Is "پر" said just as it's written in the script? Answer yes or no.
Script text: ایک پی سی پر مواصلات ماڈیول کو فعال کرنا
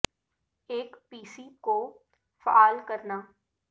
no